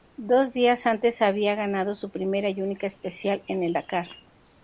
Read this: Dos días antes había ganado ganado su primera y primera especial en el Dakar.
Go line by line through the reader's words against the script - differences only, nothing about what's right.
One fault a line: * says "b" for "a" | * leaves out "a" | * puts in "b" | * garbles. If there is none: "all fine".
* leaves out "ganado"
* says "única" for "primera"